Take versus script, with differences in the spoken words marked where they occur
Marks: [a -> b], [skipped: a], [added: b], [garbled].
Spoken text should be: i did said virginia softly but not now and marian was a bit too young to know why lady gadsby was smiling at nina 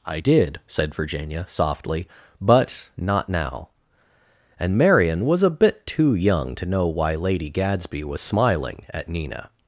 i did said virginia softly but not now and marian was a bit too young to know why lady gadsby was smiling at nina